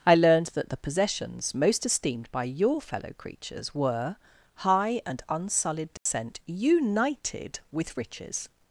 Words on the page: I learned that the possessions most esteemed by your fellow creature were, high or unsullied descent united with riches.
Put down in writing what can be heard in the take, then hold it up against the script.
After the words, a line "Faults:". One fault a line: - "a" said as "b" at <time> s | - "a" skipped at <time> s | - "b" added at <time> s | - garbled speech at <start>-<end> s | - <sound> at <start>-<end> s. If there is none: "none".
I learned that the possessions most esteemed by your fellow creatures were, high and unsullied descent united with riches.
Faults:
- "creature" said as "creatures" at 3.1 s
- "or" said as "and" at 5.0 s
- dropout at 6.0-6.1 s